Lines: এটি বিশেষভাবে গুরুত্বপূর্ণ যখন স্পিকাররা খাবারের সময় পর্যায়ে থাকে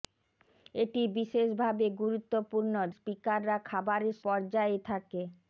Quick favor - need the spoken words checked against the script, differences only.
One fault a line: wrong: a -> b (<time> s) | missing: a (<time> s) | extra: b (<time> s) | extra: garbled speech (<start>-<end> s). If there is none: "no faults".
missing: যখন (2.7 s)
missing: সময় (4.2 s)